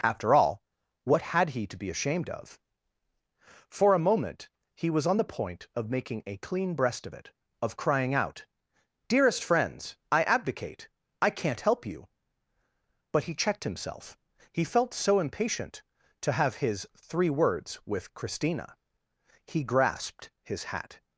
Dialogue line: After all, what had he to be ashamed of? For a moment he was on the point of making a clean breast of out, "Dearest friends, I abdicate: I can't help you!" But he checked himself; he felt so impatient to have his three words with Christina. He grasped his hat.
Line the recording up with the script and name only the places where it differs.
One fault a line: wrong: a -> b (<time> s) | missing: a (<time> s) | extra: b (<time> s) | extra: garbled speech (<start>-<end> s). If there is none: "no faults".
extra: it of crying (7.1 s)